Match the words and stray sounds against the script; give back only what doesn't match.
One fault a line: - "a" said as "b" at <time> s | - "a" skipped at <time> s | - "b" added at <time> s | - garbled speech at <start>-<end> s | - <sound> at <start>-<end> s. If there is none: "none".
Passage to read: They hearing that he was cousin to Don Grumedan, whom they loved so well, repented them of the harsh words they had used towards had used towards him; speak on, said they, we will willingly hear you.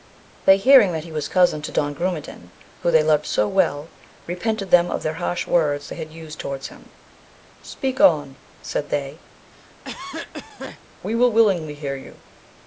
- "had used towards" skipped at 6.7 s
- cough at 9.5-10.8 s